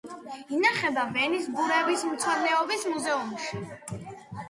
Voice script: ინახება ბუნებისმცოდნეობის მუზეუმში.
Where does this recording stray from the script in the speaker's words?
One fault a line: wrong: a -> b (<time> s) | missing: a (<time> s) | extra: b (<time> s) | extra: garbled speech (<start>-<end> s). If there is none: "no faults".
extra: ვენის (1.2 s)